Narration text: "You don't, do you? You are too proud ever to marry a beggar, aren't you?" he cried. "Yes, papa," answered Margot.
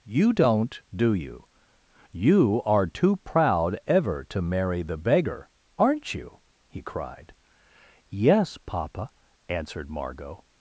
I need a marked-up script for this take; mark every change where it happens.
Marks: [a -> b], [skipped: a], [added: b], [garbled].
"You don't, do you? You are too proud ever to marry [a -> the] beggar, aren't you?" he cried. "Yes, papa," answered Margot.